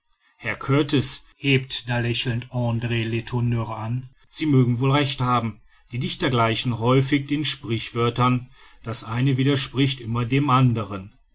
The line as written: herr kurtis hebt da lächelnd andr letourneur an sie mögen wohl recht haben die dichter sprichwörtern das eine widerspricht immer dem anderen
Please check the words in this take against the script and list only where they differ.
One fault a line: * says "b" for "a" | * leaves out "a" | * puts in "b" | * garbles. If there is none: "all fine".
* puts in "gleichen häufig den"